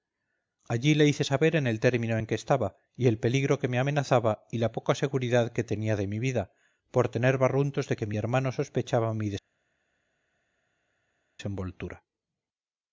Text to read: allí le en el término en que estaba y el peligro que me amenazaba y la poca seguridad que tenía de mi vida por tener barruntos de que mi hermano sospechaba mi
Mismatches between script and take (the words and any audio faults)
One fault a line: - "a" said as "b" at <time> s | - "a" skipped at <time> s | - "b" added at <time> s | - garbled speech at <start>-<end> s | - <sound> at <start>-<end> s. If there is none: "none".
- "hice saber" added at 1.1 s